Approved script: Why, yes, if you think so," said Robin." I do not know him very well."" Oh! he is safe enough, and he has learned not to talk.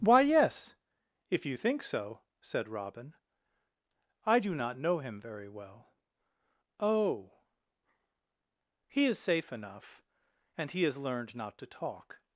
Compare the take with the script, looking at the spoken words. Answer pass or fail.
pass